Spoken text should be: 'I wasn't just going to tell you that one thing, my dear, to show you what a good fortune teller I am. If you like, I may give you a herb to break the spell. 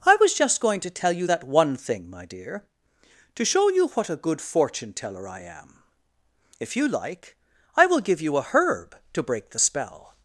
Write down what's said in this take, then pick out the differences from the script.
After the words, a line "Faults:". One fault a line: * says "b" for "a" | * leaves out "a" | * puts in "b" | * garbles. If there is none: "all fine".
'I was just going to tell you that one thing, my dear, to show you what a good fortune teller I am. If you like, I will give you a herb to break the spell.
Faults:
* says "was" for "wasn't"
* says "will" for "may"